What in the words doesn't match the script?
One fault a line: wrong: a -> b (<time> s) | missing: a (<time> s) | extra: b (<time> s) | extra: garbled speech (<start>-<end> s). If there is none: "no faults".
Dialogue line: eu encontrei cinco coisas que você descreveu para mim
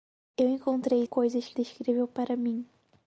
missing: cinco (1.1 s)
missing: você (1.6 s)